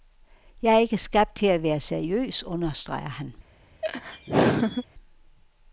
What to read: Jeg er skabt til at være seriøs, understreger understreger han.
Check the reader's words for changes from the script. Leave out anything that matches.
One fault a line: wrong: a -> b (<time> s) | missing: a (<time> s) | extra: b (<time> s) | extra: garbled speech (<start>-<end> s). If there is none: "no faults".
extra: ikke (0.8 s)
missing: understreger (3.1 s)